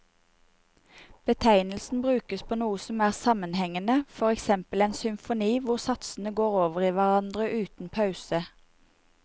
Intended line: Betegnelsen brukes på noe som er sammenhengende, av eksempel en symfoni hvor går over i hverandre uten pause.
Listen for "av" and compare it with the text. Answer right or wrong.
wrong